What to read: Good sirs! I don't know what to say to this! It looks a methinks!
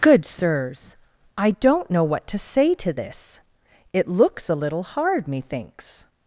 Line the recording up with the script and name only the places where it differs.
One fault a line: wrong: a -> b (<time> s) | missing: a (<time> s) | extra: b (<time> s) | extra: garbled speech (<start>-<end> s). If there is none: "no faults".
extra: little hard (4.5 s)